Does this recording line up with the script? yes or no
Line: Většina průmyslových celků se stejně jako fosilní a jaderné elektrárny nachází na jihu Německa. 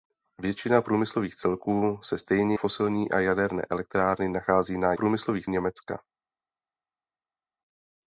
no